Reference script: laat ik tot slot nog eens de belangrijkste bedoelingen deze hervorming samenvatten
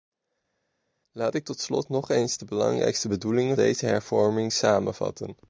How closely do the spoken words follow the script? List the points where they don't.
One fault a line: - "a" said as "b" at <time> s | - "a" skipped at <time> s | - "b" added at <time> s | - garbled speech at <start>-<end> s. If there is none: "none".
none